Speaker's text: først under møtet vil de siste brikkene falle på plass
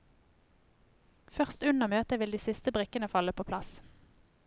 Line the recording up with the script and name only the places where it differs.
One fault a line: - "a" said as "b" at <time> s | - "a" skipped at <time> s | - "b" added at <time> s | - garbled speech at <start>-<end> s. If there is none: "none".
none